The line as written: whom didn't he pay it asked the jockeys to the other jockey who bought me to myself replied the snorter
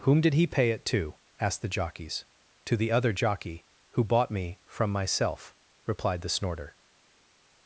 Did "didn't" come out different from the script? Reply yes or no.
yes